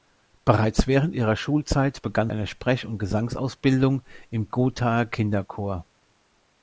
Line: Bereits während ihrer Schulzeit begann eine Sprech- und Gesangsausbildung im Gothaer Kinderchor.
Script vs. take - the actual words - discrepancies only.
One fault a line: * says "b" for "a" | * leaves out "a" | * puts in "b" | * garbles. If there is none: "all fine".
all fine